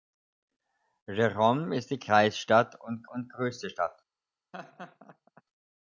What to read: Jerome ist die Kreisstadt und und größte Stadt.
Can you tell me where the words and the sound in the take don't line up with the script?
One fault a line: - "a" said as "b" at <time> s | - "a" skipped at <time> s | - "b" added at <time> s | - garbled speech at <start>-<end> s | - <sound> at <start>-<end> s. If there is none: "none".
- laugh at 4.5-5.4 s